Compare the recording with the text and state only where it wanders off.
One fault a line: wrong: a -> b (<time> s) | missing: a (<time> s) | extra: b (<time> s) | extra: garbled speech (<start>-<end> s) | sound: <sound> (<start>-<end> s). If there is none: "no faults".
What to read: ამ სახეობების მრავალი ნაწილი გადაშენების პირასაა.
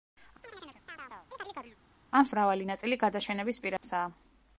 sound: chirp (0.4-1.8 s)
missing: სახეობების (2.3 s)
sound: dropout (3.8-3.8 s)